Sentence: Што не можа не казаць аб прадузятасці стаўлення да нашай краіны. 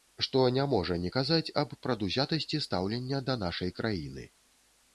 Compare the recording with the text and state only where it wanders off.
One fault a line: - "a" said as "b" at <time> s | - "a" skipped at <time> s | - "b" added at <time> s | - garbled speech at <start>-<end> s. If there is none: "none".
none